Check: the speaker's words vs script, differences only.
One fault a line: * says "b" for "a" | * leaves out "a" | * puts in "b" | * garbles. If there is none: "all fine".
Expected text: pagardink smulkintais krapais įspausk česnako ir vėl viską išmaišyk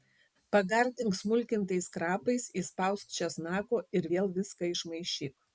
all fine